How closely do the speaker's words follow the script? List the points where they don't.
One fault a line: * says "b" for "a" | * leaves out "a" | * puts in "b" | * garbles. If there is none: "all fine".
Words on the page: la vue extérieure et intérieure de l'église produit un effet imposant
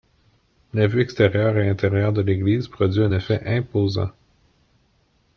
all fine